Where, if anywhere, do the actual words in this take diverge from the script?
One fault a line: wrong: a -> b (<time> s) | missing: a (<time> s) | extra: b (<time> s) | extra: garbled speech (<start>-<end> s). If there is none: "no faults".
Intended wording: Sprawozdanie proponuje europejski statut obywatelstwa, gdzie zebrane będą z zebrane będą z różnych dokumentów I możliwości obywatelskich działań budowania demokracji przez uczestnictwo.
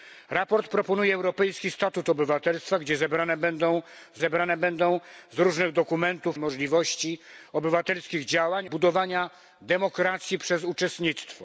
no faults